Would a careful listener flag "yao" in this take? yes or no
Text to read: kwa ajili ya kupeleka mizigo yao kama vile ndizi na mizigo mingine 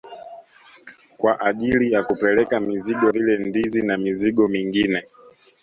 yes